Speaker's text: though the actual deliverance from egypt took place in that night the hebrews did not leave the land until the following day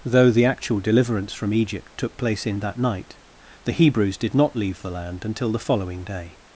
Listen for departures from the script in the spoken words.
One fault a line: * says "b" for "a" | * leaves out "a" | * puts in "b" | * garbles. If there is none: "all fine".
all fine